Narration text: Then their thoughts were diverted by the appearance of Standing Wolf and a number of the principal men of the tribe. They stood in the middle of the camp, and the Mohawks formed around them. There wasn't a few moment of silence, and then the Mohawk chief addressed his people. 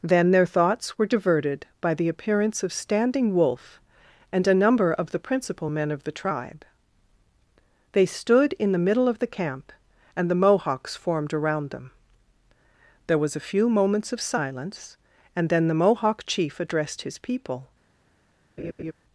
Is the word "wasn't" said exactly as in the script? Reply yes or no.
no